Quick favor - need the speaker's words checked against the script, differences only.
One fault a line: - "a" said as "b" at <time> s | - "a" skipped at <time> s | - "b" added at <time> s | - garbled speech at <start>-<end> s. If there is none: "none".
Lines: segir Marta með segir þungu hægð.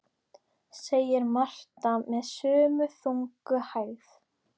- "segir" said as "sömu" at 2.3 s